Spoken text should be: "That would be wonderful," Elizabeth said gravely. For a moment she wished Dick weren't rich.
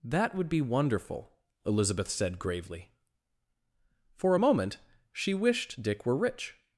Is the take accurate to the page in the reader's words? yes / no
no